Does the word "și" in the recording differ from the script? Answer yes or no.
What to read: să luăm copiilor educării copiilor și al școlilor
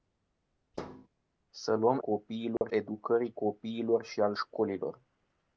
no